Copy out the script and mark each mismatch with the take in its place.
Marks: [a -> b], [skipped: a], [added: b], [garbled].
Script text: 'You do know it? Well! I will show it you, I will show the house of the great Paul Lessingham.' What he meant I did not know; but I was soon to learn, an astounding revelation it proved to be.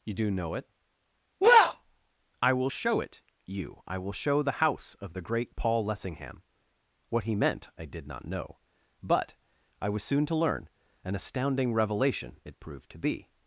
'You do know it? Well! I will show it you, I will show the house of the great Paul Lessingham.' What he meant I did not know; but I was soon to learn, an astounding revelation it proved to be.